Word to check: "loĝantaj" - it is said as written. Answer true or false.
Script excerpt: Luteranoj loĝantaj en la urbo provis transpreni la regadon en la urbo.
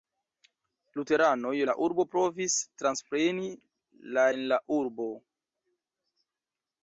false